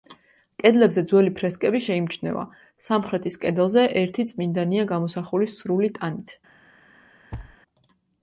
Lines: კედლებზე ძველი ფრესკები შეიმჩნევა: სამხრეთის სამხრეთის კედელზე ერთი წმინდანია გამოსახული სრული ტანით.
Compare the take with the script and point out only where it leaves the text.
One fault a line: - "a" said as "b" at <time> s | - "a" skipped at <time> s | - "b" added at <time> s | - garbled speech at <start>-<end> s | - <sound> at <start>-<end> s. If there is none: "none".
- "სამხრეთის" skipped at 3.4 s
- thud at 7.3-7.6 s